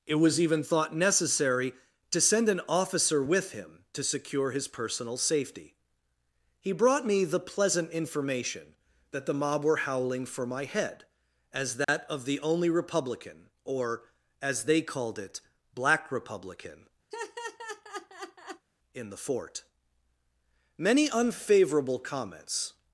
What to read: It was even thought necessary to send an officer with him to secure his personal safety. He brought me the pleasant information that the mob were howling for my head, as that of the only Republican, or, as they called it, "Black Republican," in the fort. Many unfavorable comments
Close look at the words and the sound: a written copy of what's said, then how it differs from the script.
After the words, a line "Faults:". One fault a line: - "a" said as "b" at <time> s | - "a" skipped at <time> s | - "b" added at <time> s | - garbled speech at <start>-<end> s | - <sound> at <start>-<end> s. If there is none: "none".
It was even thought necessary to send an officer with him to secure his personal safety. He brought me the pleasant information that the mob were howling for my head, as that of the only Republican, or, as they called it, "Black Republican," in the fort. Many unfavorable comments
Faults:
- dropout at 11.8-11.9 s
- laugh at 17.1-18.7 s